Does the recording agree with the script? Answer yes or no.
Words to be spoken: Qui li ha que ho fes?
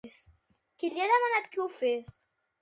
no